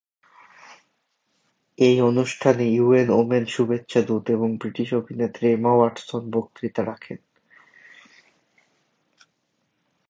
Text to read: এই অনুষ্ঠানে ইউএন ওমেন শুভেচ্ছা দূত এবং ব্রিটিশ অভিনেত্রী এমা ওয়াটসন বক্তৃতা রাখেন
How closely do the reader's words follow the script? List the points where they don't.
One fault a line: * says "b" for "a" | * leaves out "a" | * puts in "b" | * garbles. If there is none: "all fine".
all fine